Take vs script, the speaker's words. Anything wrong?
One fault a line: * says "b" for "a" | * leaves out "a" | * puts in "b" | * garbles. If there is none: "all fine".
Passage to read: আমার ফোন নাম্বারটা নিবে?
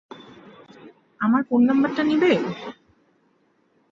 all fine